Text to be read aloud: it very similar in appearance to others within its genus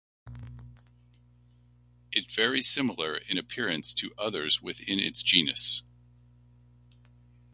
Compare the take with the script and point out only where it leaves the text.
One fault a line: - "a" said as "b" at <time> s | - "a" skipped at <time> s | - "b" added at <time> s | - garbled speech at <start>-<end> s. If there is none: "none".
none